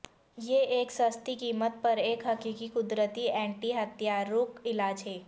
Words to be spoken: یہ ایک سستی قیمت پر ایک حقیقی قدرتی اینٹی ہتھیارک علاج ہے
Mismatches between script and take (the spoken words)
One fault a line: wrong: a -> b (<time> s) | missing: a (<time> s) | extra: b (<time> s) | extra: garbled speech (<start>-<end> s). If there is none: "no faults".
no faults